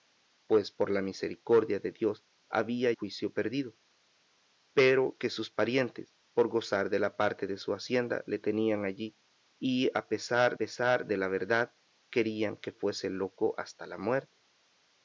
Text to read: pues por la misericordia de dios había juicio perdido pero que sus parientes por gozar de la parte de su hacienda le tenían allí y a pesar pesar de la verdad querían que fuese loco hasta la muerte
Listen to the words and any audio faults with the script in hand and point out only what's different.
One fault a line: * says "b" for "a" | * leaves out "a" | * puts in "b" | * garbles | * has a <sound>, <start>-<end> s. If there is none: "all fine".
all fine